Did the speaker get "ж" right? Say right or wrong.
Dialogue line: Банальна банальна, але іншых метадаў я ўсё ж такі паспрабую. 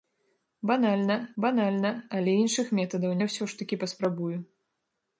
right